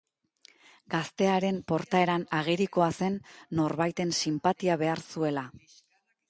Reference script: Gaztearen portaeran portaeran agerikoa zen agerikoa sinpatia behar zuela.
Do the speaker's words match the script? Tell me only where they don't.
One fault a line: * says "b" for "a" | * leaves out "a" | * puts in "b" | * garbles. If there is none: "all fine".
* leaves out "portaeran"
* says "norbaiten" for "agerikoa"